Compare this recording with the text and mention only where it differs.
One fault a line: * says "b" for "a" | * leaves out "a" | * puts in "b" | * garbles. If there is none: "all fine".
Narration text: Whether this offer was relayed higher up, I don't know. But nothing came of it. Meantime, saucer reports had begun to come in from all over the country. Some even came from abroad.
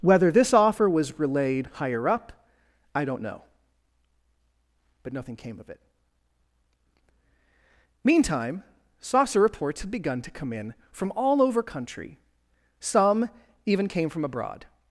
* leaves out "the"